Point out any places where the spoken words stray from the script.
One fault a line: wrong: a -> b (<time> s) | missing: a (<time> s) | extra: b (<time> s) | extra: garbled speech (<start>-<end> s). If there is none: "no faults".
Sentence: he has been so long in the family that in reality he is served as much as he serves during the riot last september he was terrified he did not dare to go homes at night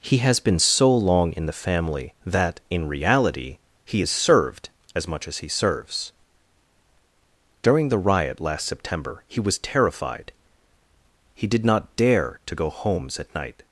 no faults